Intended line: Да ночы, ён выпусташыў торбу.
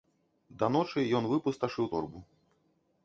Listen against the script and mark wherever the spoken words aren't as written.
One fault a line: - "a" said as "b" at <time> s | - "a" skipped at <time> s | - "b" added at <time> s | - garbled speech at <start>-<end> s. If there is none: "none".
none